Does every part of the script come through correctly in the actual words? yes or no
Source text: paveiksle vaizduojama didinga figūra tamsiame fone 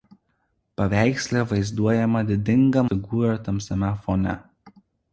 yes